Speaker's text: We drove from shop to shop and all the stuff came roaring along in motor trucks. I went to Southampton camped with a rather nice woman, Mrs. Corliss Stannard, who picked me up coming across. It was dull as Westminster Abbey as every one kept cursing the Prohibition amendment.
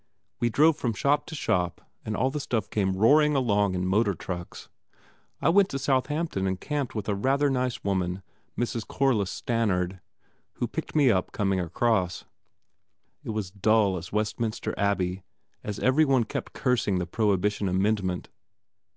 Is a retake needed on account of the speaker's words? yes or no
yes